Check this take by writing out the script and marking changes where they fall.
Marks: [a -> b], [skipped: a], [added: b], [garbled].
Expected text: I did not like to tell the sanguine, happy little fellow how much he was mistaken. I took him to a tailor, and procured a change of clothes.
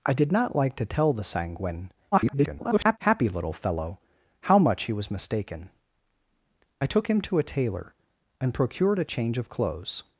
I did not like to tell the sanguine, [garbled] happy little fellow how much he was mistaken. I took him to a tailor, and procured a change of clothes.